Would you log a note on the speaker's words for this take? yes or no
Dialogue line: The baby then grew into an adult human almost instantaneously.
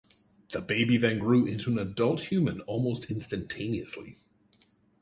no